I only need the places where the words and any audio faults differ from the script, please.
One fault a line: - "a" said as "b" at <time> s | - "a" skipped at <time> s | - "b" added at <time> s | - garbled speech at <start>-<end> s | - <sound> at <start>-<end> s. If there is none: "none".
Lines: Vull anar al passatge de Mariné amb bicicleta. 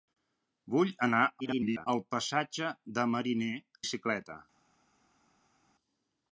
- garbled speech at 1.4-1.9 s
- "amb" skipped at 3.5 s